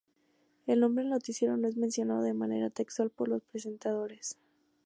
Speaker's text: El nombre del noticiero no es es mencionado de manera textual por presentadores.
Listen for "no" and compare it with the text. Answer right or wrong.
right